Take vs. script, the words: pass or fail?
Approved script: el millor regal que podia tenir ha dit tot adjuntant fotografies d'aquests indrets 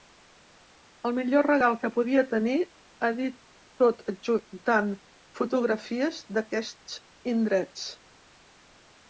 pass